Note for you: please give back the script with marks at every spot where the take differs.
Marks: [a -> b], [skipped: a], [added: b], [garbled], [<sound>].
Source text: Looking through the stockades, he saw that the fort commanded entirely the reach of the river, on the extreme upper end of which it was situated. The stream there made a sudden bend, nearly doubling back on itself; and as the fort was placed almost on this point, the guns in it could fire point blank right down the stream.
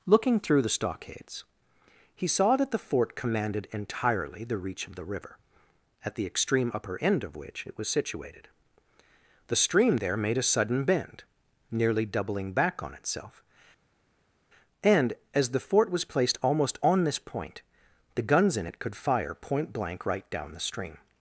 Looking through the stockades, he saw that the fort commanded entirely the reach of the river, [on -> at] the extreme upper end of which it was situated. The stream there made a sudden bend, nearly doubling back on itself; and as the fort was placed almost on this point, the guns in it could fire point blank right down the stream.